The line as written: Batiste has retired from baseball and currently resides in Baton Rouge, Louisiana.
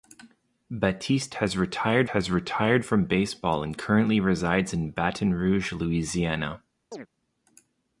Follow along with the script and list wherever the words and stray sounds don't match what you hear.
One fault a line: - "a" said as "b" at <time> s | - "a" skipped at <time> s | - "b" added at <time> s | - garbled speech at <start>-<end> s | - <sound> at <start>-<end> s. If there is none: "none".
- "has retired" added at 2.1 s
- chirp at 6.9-7.1 s